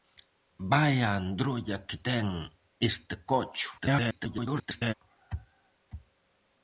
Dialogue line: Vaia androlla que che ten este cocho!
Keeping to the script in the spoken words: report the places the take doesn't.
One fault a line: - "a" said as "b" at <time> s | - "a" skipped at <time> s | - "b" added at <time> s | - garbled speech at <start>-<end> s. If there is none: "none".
- "che" skipped at 2.0 s
- garbled speech at 3.8-4.9 s